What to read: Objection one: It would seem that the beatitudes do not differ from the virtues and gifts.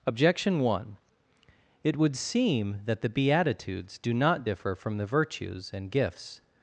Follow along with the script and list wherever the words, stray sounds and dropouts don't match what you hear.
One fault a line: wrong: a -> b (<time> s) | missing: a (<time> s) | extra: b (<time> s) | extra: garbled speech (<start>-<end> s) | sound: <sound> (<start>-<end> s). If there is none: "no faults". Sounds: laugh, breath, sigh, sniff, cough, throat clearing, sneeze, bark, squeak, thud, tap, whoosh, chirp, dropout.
no faults